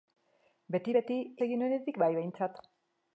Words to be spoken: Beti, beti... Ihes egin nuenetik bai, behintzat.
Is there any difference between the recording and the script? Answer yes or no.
yes